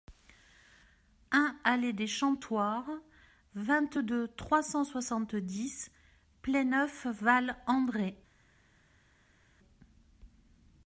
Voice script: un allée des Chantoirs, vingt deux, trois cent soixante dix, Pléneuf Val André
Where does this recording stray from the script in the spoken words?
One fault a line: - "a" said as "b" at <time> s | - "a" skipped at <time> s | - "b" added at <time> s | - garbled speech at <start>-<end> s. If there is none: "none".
none